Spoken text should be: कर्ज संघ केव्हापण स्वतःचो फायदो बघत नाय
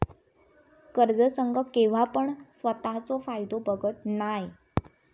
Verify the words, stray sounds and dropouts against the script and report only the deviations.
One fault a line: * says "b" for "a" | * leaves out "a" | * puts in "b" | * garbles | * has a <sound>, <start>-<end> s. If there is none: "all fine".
all fine